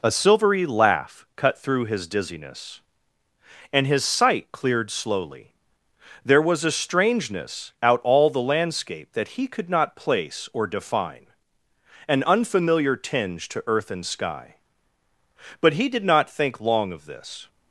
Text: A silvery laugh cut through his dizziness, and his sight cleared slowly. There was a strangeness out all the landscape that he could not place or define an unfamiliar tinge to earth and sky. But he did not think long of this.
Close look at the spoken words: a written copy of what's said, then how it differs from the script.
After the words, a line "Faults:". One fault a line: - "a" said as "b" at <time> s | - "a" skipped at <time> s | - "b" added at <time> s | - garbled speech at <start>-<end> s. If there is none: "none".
A silvery laugh cut through his dizziness, and his sight cleared slowly. There was a strangeness out all the landscape that he could not place or define an unfamiliar tinge to earth and sky. But he did not think long of this.
Faults:
none